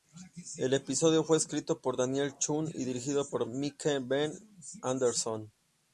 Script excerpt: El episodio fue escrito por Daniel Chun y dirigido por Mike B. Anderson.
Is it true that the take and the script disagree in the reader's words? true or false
false